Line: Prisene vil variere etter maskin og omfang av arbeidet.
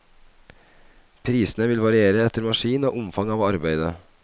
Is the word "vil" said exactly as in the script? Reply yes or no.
yes